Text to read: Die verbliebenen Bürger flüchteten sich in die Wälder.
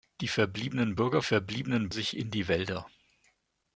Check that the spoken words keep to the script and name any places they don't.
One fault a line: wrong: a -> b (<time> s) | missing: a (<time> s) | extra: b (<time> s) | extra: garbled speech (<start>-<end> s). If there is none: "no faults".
wrong: flüchteten -> verbliebenen (1.2 s)